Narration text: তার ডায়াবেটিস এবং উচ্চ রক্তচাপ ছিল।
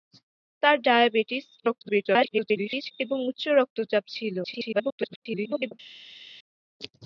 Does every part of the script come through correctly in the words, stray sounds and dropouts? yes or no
no